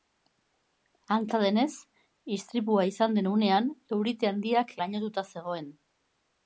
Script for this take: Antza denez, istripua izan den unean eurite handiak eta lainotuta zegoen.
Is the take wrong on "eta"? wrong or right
wrong